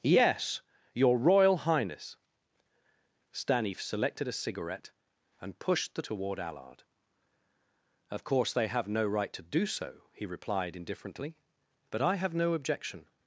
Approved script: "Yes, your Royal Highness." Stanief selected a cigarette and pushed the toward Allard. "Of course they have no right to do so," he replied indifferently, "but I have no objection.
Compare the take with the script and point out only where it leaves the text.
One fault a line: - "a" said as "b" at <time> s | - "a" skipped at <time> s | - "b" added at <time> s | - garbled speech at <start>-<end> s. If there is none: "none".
none